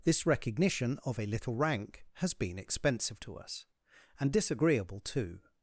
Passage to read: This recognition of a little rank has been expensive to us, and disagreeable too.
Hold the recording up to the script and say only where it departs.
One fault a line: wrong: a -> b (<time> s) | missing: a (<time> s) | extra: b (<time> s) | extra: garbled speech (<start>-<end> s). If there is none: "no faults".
no faults